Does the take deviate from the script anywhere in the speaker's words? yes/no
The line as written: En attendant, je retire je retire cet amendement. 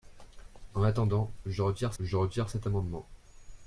no